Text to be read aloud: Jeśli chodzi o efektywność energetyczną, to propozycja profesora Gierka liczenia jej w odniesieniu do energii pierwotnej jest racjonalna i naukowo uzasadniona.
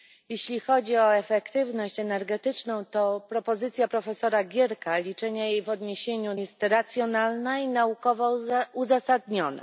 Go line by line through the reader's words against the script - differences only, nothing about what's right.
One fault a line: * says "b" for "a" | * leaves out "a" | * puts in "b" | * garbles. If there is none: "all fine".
* leaves out "do energii pierwotnej"